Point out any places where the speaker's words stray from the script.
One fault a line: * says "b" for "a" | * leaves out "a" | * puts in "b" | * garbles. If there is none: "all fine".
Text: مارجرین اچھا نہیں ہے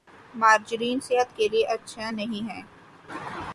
* puts in "صحت کے لئے"